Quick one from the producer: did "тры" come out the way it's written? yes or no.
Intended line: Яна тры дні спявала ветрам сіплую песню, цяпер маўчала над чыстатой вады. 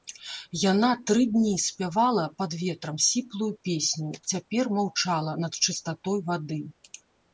yes